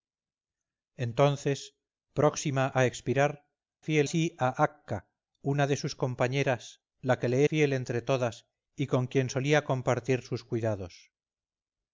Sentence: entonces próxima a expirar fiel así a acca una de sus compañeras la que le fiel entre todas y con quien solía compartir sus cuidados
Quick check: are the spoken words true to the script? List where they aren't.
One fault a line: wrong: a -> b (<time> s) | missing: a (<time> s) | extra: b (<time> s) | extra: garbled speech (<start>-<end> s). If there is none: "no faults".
no faults